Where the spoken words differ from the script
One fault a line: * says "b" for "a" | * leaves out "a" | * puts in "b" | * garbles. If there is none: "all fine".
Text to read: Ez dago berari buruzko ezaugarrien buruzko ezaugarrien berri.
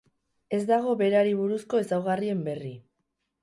* leaves out "buruzko ezaugarrien"